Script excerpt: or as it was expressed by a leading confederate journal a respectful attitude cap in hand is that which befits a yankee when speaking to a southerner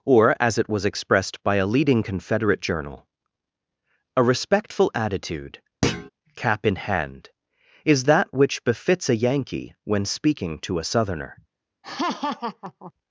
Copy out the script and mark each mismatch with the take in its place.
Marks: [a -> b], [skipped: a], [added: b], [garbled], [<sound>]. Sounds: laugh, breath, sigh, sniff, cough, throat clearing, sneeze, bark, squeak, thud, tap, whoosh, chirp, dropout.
or as it was expressed by a leading confederate journal a respectful attitude [thud] cap in hand is that which befits a yankee when speaking to a southerner [laugh]